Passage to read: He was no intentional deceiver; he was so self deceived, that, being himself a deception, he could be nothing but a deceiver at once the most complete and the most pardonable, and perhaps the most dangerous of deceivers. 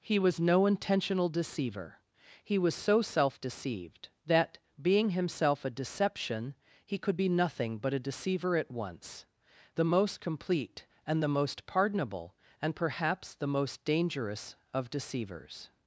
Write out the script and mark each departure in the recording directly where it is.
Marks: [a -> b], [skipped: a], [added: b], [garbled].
He was no intentional deceiver; he was so self deceived, that, being himself a deception, he could be nothing but a deceiver at once the most complete and the most pardonable, and perhaps the most dangerous of deceivers.